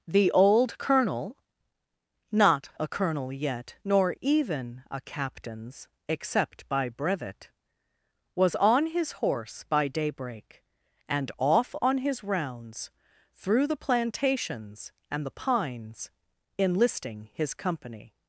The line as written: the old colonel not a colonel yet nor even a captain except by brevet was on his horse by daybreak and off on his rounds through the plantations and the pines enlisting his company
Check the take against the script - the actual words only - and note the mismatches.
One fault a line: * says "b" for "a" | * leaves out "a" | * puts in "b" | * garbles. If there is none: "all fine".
* says "captains" for "captain"